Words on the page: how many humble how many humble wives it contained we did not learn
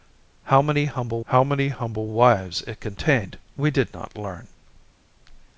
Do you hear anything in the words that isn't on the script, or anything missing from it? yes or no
no